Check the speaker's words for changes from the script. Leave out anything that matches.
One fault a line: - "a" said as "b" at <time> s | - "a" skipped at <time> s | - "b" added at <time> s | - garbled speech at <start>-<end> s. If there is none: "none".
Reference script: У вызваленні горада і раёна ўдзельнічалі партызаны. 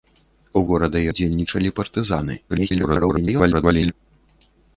- "вызваленні" skipped at 0.6 s
- "раёна" skipped at 1.1 s
- garbled speech at 2.5-3.9 s